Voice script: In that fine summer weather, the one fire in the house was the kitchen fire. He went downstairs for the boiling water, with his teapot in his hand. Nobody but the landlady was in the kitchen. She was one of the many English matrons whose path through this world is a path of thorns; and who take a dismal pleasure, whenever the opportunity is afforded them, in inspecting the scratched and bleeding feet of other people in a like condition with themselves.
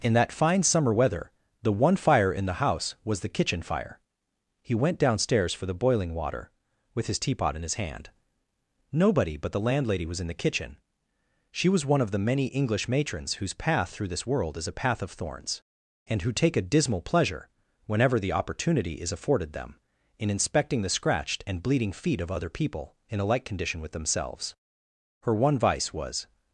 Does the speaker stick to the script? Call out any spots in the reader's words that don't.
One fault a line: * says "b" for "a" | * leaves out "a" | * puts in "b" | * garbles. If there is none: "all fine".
* puts in "Her one vice was"